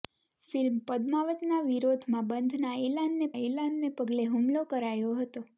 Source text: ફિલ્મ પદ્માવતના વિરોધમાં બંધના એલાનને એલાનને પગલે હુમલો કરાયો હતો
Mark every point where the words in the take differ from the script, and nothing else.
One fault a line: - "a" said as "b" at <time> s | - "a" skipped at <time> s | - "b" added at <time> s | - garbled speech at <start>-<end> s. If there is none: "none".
none